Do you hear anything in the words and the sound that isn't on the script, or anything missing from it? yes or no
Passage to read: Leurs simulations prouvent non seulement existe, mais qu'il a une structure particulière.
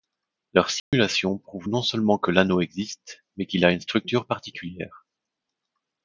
yes